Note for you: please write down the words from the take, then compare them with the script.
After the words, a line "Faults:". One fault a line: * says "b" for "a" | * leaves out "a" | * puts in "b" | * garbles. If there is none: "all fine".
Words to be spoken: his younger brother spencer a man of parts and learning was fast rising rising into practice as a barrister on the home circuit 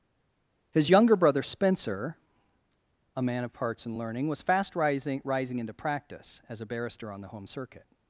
his younger brother spencer a man of parts and learning was fast rising rising into practice as a barrister on the home circuit
Faults:
all fine